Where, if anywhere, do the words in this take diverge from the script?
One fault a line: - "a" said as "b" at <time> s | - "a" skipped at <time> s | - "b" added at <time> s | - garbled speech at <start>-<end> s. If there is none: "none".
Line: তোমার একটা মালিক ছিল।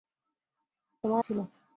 - "একটা মালিক" skipped at 1.2 s